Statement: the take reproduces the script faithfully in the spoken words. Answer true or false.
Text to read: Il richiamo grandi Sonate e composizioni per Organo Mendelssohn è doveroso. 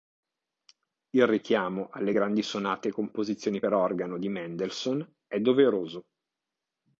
false